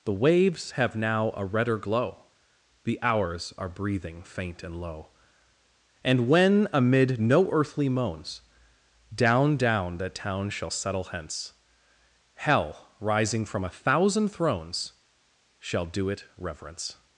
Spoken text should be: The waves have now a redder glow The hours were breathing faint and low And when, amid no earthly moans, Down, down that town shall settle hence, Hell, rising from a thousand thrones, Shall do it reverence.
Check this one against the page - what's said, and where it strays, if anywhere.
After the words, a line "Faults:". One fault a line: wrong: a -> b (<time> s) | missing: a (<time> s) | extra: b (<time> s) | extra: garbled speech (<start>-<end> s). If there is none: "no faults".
The waves have now a redder glow The hours are breathing faint and low And when, amid no earthly moans, Down, down that town shall settle hence, Hell, rising from a thousand thrones, Shall do it reverence.
Faults:
wrong: were -> are (3.6 s)